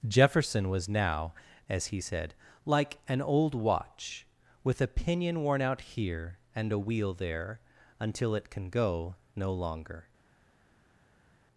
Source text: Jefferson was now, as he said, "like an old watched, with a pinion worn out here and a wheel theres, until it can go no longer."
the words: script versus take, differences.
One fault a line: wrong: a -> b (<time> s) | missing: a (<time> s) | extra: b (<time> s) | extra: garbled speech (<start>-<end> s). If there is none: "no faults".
wrong: watched -> watch (3.5 s)
wrong: theres -> there (7.1 s)